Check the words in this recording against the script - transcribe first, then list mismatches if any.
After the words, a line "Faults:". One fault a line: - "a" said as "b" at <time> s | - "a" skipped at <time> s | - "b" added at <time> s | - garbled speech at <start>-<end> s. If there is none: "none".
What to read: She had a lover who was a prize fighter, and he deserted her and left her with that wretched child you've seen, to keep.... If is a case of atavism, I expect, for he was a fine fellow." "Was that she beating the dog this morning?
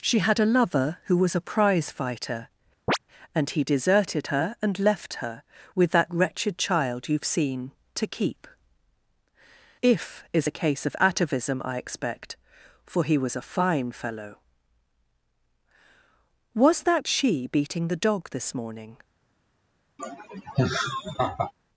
She had a lover who was a prize fighter, and he deserted her and left her with that wretched child you've seen, to keep.... If is a case of atavism, I expect, for he was a fine fellow." "Was that she beating the dog this morning?
Faults:
none